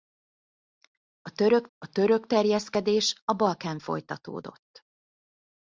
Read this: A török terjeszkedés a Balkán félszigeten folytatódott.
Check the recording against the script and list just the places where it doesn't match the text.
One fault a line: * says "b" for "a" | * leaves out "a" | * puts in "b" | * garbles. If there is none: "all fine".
* puts in "a török"
* leaves out "félszigeten"